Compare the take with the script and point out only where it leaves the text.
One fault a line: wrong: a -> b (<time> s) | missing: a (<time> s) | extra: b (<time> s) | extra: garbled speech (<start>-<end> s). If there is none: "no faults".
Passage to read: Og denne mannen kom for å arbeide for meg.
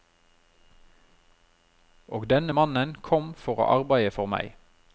no faults